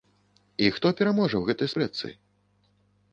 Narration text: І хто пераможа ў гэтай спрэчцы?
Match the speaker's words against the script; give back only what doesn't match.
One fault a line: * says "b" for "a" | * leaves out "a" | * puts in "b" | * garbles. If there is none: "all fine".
all fine